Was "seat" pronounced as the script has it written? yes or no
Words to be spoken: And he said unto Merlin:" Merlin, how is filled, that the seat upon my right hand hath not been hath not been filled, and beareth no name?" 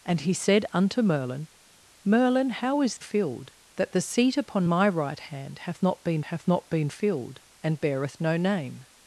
yes